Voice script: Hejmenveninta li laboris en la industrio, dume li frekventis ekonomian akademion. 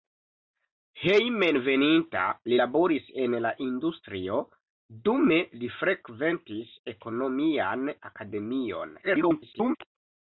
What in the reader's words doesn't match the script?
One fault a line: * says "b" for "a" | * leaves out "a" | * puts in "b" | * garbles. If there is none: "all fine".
* garbles